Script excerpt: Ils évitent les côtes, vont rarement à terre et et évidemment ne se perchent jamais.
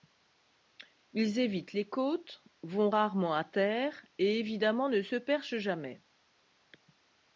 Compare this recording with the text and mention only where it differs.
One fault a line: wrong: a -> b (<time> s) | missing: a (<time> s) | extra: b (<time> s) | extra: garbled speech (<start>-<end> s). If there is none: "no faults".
missing: et (4.4 s)